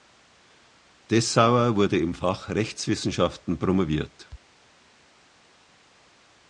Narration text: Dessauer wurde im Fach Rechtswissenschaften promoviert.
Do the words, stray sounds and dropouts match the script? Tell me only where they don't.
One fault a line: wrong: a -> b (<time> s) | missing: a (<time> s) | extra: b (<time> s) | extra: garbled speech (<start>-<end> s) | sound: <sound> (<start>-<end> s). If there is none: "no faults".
no faults